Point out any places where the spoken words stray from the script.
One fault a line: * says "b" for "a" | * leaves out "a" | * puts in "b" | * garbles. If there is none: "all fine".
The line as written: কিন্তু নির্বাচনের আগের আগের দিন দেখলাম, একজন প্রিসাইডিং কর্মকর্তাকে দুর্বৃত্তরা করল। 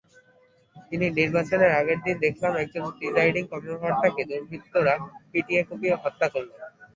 * leaves out "আগের"
* puts in "পিটিয়ে-কুপিয়ে হত্যা"